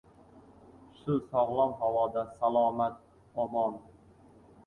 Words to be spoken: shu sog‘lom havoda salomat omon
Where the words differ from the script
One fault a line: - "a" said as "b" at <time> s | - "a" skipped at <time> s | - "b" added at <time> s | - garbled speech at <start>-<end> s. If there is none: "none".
none